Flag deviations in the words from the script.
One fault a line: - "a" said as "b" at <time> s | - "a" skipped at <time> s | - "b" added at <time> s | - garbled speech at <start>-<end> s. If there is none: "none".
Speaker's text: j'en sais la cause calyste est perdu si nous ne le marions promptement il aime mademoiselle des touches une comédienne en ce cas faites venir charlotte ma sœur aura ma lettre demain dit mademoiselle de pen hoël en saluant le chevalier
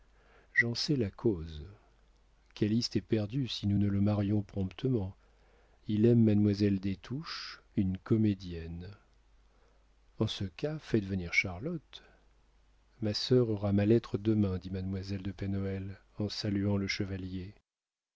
none